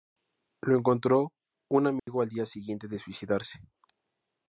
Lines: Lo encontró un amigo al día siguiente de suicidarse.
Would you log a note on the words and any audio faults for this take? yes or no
yes